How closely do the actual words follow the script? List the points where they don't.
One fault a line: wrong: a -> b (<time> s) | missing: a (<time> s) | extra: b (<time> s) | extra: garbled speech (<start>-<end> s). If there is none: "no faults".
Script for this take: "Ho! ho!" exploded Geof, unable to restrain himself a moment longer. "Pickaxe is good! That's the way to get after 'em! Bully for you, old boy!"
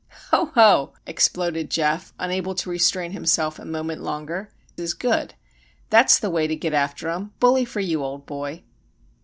missing: Pickaxe (4.5 s)